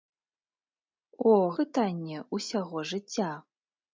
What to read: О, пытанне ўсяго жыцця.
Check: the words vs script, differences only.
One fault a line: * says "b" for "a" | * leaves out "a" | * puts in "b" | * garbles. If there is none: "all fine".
all fine